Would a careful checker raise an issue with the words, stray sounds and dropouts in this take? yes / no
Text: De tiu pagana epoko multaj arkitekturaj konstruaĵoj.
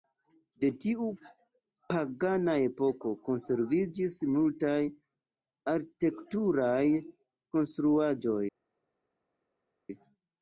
yes